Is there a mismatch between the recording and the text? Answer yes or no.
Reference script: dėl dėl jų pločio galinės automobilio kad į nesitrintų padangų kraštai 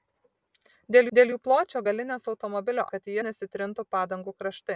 no